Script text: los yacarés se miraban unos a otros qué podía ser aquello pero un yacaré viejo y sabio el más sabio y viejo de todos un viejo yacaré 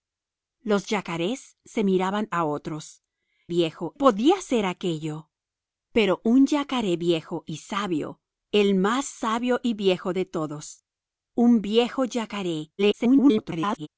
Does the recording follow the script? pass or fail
fail